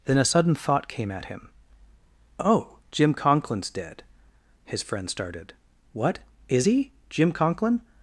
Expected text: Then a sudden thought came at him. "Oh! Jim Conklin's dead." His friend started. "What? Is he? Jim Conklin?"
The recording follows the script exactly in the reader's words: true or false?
true